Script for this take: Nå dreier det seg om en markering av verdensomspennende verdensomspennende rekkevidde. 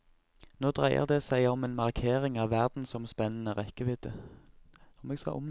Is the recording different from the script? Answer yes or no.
yes